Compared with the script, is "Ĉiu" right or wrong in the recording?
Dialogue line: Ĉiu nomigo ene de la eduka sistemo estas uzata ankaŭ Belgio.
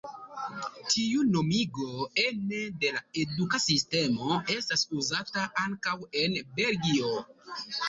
wrong